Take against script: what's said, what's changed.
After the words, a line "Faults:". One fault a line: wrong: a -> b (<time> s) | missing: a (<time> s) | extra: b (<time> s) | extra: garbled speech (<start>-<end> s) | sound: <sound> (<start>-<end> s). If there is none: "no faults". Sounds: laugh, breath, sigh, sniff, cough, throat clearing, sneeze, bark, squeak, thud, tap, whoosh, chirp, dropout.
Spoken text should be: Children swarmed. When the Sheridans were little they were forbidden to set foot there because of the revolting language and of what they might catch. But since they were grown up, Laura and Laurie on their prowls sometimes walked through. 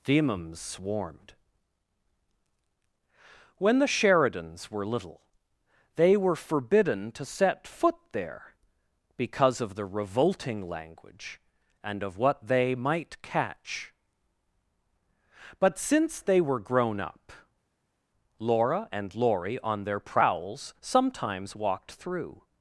Themums swarmed. When the Sheridans were little they were forbidden to set foot there because of the revolting language and of what they might catch. But since they were grown up, Laura and Laurie on their prowls sometimes walked through.
Faults:
wrong: Children -> Themums (0.0 s)